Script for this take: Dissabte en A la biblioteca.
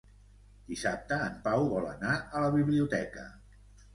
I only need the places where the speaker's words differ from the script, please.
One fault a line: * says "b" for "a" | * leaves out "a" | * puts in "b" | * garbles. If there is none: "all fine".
* puts in "Pau vol anar"